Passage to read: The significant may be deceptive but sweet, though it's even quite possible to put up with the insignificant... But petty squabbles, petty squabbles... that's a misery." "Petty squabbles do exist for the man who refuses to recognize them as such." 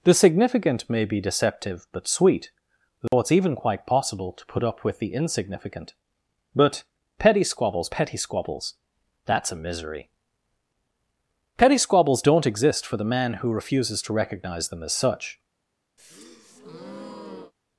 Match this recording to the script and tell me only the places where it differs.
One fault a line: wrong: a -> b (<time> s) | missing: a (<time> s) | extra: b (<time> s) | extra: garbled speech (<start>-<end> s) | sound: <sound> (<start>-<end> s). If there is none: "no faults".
sound: dropout (3.1-3.1 s)
wrong: do -> don't (12.2 s)
sound: breath (16.0-17.5 s)